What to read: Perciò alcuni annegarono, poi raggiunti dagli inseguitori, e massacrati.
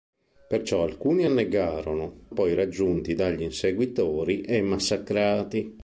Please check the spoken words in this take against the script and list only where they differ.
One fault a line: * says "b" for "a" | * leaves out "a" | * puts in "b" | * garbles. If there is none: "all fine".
all fine